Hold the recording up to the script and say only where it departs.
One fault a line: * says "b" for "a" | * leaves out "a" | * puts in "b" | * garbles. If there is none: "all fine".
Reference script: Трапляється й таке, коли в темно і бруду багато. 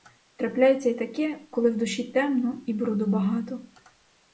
* puts in "душі"